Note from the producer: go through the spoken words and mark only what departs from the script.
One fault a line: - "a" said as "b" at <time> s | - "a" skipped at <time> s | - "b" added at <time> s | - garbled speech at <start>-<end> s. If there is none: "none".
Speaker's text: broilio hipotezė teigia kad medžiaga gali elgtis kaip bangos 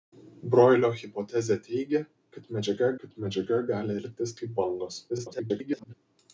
- "kad medžiaga" added at 3.0 s
- garbled speech at 5.1-5.9 s